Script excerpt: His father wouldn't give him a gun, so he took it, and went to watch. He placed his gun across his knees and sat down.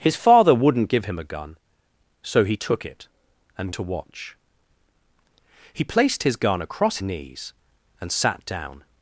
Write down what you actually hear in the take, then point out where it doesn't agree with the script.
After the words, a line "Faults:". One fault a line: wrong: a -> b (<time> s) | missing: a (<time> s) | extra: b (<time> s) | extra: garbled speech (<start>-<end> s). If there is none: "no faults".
His father wouldn't give him a gun, so he took it, and to watch. He placed his gun across knees and sat down.
Faults:
missing: went (3.7 s)
missing: his (7.0 s)